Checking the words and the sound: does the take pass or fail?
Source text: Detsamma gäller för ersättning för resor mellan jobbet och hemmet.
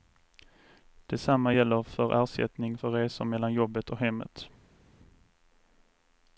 pass